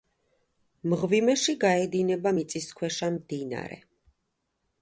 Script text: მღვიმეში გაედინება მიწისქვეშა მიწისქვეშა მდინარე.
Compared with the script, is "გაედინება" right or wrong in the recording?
right